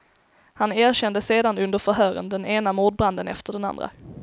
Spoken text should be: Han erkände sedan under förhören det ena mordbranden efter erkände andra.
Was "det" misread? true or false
true